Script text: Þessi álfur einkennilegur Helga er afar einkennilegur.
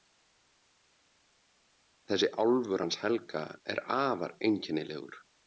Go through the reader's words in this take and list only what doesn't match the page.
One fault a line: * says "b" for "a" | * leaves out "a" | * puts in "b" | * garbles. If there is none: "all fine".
* says "hans" for "einkennilegur"